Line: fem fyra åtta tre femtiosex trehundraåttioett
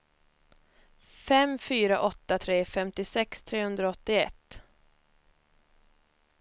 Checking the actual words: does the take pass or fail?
pass